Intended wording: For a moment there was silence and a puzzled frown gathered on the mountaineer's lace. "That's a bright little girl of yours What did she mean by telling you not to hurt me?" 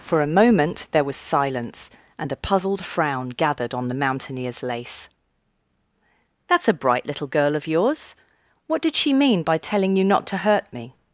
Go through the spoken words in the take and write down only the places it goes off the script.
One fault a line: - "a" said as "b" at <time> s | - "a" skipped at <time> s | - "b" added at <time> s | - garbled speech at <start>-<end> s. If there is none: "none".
none